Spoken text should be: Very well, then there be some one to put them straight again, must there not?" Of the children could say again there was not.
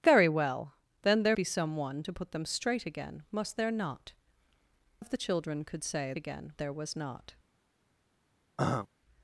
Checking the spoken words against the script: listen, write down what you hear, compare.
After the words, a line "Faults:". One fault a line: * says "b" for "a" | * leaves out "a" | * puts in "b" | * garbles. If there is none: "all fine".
Very well, then there be some one to put them straight again, must there not?" Of the children could say again there was not.
Faults:
all fine